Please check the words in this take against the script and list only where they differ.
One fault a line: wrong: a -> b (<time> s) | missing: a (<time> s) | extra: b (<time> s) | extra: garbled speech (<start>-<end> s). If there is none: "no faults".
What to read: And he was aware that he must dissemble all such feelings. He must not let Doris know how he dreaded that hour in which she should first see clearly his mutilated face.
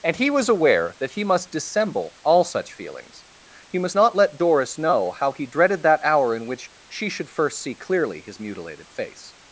no faults